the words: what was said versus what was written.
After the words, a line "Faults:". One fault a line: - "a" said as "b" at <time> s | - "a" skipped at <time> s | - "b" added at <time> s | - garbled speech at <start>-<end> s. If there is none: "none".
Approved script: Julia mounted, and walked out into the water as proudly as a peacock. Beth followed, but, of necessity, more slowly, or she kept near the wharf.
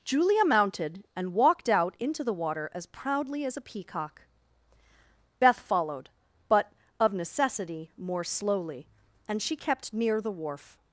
Julia mounted, and walked out into the water as proudly as a peacock. Beth followed, but, of necessity, more slowly, and she kept near the wharf.
Faults:
- "or" said as "and" at 9.3 s